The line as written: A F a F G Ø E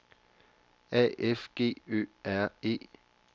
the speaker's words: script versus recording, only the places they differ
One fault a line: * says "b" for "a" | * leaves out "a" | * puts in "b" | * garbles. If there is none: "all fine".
* leaves out "a F"
* puts in "R"